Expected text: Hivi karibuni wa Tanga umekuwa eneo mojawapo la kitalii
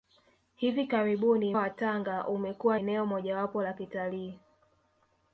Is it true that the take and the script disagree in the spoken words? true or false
false